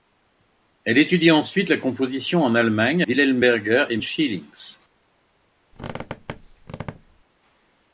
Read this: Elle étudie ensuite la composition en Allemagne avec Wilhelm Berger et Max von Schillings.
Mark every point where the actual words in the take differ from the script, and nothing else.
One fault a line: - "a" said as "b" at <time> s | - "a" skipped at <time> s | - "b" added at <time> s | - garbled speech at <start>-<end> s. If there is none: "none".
- "avec" skipped at 3.0 s
- "Max von" skipped at 4.0 s